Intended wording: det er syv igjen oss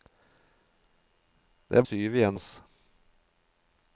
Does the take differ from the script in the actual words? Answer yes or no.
no